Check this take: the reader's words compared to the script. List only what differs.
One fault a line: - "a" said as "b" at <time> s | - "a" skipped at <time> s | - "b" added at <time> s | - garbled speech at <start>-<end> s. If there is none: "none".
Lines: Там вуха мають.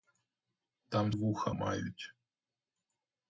none